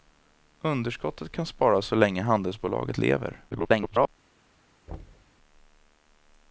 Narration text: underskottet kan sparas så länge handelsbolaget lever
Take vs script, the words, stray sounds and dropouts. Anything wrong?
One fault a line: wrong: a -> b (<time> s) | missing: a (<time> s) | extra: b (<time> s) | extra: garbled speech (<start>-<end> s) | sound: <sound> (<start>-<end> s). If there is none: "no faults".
extra: garbled speech (3.5-4.1 s)
sound: thud (4.9-5.3 s)